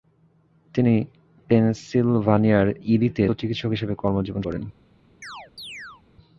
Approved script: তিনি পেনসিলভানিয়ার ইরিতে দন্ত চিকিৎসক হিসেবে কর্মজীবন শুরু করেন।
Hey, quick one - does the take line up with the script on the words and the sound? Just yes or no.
no